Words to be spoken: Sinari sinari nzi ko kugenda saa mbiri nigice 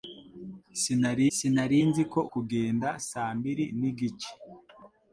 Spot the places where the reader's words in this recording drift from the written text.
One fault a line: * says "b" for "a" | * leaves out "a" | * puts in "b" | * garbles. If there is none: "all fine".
all fine